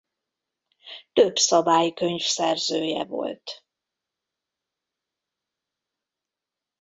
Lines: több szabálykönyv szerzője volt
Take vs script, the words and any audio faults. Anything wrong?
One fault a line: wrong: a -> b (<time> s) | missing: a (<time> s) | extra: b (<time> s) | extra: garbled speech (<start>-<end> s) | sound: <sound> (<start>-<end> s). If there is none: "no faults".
no faults